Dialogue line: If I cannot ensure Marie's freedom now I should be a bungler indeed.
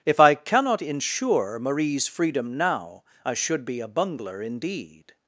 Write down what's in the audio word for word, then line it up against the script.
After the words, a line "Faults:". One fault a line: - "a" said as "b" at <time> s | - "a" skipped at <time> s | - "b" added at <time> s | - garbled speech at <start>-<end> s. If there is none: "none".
If I cannot ensure Marie's freedom now I should be a bungler indeed.
Faults:
none